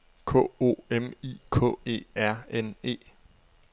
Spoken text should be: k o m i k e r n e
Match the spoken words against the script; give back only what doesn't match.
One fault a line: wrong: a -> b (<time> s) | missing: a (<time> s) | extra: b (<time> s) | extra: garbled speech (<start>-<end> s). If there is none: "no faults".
no faults